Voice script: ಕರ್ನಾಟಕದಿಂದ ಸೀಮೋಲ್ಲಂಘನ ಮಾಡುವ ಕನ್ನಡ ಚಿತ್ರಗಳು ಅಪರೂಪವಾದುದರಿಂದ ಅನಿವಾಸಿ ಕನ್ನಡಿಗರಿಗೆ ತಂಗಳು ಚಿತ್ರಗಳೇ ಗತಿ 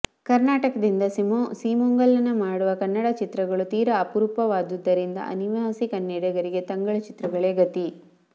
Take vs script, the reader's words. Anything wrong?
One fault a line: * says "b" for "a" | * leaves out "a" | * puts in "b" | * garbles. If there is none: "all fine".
* puts in "ತೀರಾ"